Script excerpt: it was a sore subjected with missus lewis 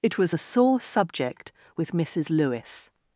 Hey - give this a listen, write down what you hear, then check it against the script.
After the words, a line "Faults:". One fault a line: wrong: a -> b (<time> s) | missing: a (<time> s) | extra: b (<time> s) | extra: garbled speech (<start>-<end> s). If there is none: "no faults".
it was a sore subject with missus lewis
Faults:
wrong: subjected -> subject (0.8 s)